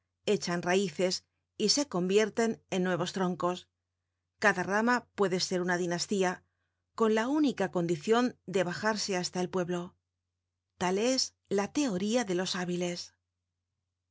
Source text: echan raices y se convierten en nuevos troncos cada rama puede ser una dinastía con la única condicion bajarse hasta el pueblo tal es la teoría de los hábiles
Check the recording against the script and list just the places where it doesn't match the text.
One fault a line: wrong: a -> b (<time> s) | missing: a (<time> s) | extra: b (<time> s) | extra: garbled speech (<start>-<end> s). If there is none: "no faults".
extra: de (8.5 s)